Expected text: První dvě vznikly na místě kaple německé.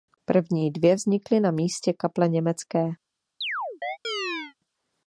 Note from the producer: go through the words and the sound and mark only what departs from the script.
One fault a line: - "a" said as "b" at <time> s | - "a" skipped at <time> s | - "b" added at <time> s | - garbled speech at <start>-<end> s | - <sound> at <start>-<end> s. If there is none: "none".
- chirp at 3.4-4.5 s